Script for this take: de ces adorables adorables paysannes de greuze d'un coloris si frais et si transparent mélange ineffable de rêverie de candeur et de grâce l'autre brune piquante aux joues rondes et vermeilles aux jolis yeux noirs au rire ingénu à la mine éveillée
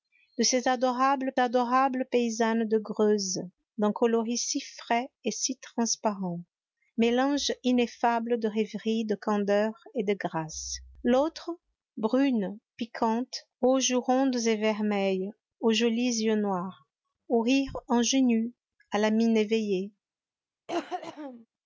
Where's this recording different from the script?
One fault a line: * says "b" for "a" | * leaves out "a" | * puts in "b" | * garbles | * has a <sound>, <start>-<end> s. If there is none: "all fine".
* has a cough, 20.7-21.5 s